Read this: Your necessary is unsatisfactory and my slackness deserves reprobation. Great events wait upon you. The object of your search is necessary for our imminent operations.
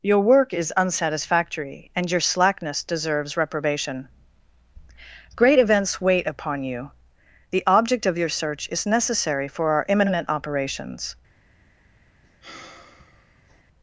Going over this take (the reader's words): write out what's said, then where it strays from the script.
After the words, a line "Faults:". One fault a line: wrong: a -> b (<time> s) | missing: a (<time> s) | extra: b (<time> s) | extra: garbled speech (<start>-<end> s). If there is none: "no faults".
Your work is unsatisfactory and your slackness deserves reprobation. Great events wait upon you. The object of your search is necessary for our imminent operations.
Faults:
wrong: necessary -> work (0.2 s)
wrong: my -> your (2.1 s)